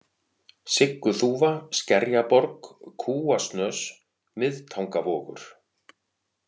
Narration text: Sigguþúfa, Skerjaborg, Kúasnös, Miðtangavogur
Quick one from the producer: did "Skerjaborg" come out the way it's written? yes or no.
yes